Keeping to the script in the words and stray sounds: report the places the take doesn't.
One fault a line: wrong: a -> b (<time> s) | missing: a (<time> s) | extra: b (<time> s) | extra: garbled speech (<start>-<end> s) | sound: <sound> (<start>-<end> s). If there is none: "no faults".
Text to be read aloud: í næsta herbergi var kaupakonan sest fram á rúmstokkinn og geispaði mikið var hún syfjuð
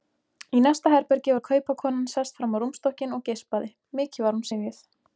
no faults